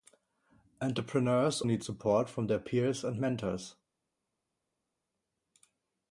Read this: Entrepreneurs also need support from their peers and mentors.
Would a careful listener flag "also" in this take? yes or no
yes